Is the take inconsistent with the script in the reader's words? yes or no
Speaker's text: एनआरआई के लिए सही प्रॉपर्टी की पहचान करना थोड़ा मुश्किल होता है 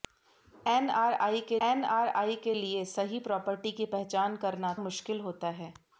yes